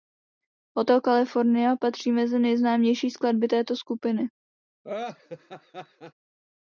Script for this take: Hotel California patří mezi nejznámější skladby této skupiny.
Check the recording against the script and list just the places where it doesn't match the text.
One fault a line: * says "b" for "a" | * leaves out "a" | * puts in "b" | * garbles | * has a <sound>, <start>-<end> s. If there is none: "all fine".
* has a laugh, 4.8-6.1 s